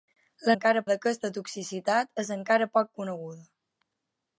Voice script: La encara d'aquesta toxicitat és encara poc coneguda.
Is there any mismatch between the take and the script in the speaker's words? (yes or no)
no